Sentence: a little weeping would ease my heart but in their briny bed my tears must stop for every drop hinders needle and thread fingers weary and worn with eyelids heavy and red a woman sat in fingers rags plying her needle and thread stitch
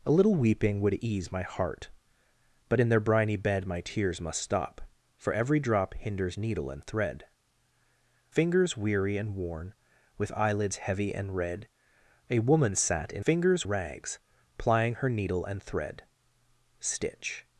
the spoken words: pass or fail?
pass